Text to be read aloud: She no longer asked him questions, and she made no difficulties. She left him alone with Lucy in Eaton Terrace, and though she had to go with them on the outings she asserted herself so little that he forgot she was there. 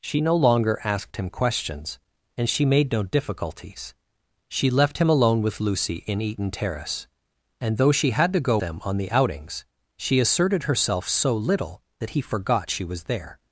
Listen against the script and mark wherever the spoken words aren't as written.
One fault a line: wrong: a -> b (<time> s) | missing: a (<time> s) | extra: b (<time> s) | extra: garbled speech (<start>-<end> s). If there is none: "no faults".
missing: with (8.6 s)